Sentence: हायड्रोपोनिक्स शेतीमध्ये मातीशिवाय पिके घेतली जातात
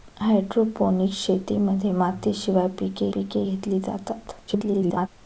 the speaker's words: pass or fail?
fail